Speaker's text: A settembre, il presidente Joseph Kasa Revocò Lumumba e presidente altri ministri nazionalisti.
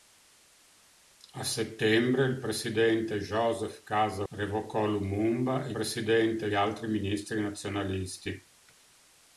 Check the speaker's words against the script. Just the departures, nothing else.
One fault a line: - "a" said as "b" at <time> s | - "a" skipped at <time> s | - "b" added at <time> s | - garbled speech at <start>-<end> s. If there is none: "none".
none